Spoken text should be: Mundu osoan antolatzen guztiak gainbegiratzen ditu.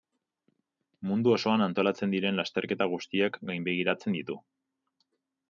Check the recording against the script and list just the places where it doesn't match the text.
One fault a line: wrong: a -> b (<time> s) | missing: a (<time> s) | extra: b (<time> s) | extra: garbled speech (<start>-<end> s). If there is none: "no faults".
extra: diren lasterketa (2.1 s)